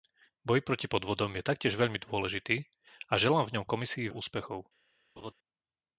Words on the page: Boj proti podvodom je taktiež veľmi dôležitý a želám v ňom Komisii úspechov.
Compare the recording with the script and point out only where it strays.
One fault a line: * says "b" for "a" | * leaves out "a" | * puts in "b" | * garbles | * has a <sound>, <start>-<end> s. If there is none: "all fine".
* has a laugh, 5.2-5.3 s